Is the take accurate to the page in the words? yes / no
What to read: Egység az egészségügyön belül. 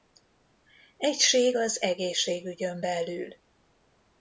yes